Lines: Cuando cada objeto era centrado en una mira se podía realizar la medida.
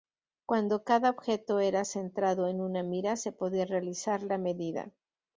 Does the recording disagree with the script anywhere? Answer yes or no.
no